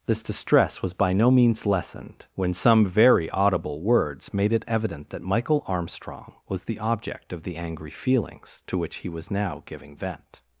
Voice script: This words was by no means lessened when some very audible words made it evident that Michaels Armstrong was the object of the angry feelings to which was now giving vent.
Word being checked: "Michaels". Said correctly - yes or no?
no